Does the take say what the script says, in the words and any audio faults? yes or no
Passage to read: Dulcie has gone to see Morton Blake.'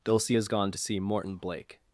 yes